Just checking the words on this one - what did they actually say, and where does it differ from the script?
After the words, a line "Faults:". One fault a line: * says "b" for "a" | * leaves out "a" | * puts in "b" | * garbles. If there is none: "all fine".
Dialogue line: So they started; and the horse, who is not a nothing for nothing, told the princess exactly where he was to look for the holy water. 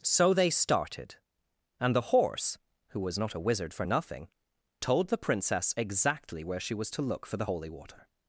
So they started; and the horse, who was not a wizard for nothing, told the princess exactly where she was to look for the holy water.
Faults:
* says "was" for "is"
* says "wizard" for "nothing"
* says "she" for "he"